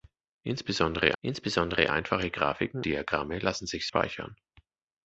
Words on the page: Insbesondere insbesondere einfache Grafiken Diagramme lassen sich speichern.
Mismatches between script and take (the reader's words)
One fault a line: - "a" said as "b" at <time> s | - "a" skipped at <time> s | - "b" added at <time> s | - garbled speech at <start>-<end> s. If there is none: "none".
none